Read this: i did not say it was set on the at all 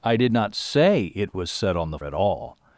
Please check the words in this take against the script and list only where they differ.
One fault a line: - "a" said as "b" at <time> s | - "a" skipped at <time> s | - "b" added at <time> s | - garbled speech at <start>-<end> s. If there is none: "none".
none